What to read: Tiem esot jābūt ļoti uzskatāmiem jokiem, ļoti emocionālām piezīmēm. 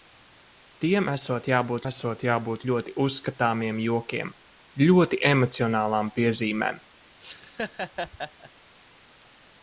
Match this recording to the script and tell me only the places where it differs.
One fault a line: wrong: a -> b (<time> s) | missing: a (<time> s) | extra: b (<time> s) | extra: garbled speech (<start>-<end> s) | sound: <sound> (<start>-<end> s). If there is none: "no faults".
extra: esot jābūt (1.8 s)
sound: laugh (7.2-8.5 s)